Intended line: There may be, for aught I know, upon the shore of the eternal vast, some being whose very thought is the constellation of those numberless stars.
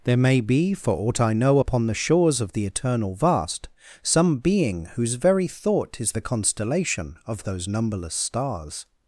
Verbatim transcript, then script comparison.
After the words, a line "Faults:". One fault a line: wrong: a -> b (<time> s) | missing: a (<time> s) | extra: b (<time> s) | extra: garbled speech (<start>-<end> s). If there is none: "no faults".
There may be, for aught I know, upon the shores of the eternal vast, some being whose very thought is the constellation of those numberless stars.
Faults:
wrong: shore -> shores (1.9 s)